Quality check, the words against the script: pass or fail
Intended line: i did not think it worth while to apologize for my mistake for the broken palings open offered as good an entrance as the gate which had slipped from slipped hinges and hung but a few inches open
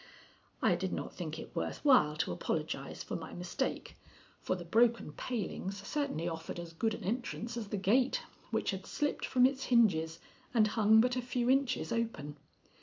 fail